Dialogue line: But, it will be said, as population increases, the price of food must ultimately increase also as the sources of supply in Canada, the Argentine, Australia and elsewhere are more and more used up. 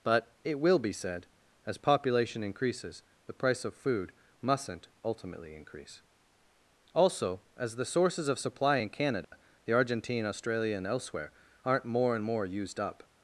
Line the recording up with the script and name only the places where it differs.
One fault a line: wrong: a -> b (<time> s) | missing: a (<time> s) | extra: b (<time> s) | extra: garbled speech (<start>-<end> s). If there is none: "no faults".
wrong: must -> mustn't (4.4 s)
wrong: are -> aren't (11.6 s)